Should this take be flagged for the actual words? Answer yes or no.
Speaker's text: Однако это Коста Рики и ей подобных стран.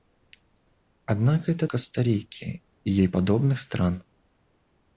no